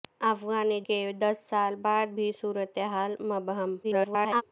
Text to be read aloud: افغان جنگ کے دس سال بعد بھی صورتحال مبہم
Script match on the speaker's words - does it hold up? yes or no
no